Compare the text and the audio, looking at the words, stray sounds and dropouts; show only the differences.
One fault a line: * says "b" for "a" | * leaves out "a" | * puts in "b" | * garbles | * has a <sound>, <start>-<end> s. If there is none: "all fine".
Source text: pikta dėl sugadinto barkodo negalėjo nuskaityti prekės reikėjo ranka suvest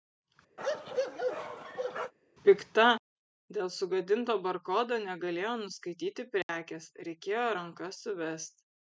* has a bark, 0.6-2.1 s
* has a dropout, 6.4-6.5 s